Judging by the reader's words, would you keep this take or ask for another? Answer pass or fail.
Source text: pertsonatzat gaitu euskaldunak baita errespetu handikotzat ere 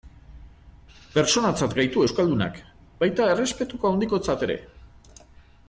pass